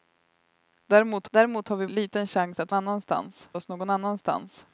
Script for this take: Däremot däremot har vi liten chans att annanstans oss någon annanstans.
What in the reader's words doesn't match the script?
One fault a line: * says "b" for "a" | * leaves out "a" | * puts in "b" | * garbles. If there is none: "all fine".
all fine